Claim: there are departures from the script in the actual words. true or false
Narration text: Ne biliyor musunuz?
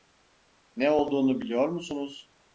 true